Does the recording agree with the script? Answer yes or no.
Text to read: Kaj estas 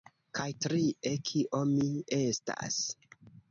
no